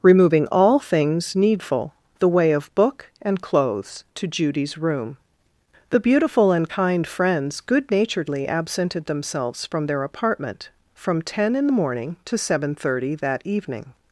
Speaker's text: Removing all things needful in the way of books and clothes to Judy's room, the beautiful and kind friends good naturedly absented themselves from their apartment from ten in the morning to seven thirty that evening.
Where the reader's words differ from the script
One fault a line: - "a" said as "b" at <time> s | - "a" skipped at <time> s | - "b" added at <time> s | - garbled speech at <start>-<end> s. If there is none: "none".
- "in" skipped at 1.9 s
- "books" said as "book" at 2.7 s